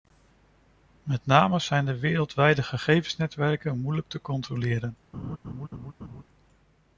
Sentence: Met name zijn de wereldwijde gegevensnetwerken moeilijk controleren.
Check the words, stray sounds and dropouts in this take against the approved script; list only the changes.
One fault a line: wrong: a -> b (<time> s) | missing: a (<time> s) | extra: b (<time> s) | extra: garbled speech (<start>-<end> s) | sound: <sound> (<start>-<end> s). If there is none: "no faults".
extra: te (4.1 s)
sound: laugh (5.1-6.2 s)